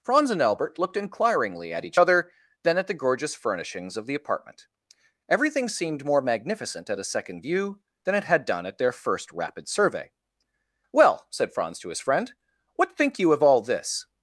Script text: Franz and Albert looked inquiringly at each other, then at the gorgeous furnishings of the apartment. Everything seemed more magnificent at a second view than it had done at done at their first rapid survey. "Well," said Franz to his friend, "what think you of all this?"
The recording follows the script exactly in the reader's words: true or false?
false